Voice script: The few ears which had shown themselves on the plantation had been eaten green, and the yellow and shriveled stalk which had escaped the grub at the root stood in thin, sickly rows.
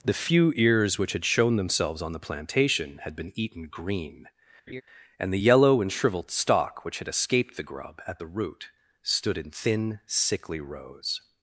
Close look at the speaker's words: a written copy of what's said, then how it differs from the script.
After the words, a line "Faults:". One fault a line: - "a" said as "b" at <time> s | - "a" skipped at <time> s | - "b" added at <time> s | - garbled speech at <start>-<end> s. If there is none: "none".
The few ears which had shown themselves on the plantation had been eaten green, and the yellow and shriveled stalk which had escaped the grub at the root stood in thin, sickly rows.
Faults:
none